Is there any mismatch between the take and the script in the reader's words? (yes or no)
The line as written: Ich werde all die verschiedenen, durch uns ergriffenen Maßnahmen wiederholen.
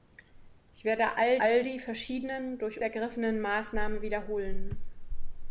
yes